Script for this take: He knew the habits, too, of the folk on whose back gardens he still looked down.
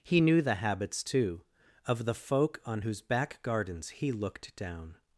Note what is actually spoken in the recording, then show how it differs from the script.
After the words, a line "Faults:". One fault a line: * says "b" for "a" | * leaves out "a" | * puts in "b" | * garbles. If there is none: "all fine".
He knew the habits, too, of the folk on whose back gardens he looked down.
Faults:
* leaves out "still"